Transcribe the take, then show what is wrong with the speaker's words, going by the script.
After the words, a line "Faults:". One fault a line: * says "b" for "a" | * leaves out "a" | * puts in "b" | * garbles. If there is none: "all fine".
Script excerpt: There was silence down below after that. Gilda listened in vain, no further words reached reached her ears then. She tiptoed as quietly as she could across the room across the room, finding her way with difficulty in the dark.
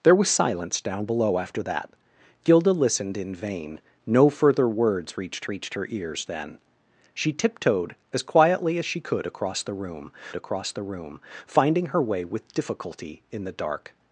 There was silence down below after that. Gilda listened in vain, no further words reached reached her ears then. She tiptoed as quietly as she could across the room across the room, finding her way with difficulty in the dark.
Faults:
all fine